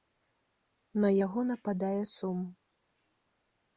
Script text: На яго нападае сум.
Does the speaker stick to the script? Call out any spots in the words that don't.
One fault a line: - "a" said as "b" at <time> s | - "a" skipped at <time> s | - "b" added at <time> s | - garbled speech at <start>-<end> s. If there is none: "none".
none